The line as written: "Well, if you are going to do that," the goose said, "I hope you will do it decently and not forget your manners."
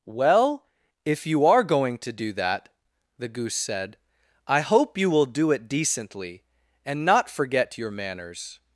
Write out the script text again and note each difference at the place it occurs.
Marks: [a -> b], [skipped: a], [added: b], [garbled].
"Well, if you are going to do that," the goose said, "I hope you will do it decently and not forget your manners."